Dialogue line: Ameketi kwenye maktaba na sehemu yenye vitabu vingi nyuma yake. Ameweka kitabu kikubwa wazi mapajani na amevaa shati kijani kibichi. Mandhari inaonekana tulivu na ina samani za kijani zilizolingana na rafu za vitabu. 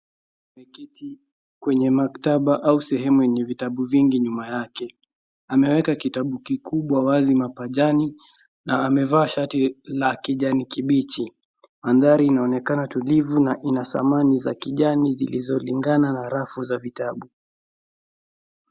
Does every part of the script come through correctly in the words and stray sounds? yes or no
no